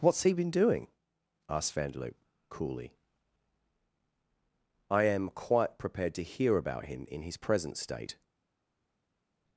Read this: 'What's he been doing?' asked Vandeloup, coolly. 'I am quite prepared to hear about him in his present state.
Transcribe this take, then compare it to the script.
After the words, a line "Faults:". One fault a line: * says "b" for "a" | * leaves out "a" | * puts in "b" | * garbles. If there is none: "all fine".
'What's he been doing?' asked Vandeloup, coolly. 'I am quite prepared to hear about him in his present state.
Faults:
all fine